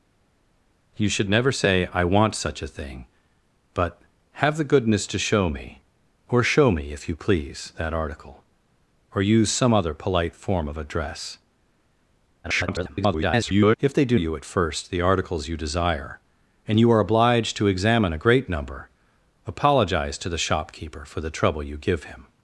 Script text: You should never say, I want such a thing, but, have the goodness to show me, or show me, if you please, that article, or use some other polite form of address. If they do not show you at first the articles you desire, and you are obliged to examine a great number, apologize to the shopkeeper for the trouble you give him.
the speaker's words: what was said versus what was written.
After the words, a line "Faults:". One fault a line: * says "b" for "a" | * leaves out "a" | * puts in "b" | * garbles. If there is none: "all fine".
You should never say, I want such a thing, but, have the goodness to show me, or show me, if you please, that article, or use some other polite form of address. [garbled] If they do you at first the articles you desire, and you are obliged to examine a great number, apologize to the shopkeeper for the trouble you give him.
Faults:
* garbles
* leaves out "not show"